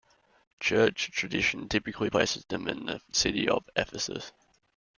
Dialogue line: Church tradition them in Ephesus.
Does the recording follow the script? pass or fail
fail